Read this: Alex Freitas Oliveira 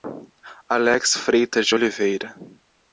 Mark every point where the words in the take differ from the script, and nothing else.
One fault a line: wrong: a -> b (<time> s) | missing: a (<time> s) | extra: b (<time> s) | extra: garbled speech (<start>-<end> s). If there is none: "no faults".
extra: de (1.7 s)